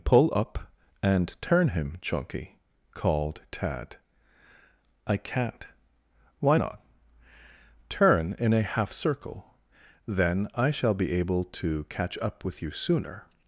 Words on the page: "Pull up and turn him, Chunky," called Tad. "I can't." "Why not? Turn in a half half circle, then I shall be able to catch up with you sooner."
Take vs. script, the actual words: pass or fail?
fail